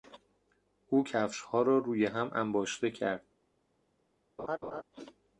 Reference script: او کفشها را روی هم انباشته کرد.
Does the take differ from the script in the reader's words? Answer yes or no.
no